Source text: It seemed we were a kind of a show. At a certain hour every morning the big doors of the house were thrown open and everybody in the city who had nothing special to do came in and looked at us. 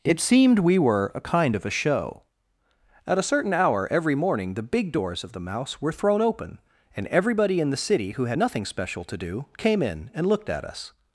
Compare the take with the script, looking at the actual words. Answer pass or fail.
fail